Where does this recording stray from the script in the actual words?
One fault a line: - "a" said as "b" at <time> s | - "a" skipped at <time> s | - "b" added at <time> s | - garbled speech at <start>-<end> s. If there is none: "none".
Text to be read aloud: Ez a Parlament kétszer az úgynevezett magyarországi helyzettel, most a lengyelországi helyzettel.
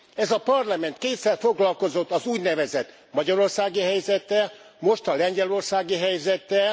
- "foglalkozott" added at 1.4 s